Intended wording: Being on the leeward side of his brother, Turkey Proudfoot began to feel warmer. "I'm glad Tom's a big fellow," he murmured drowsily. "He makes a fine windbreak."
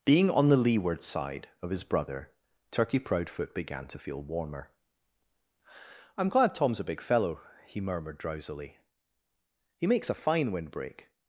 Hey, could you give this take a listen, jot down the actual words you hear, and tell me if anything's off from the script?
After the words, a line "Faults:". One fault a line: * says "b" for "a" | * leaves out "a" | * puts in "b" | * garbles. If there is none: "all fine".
Being on the leeward side of his brother, Turkey Proudfoot began to feel warmer. "I'm glad Tom's a big fellow," he murmured drowsily. "He makes a fine windbreak."
Faults:
all fine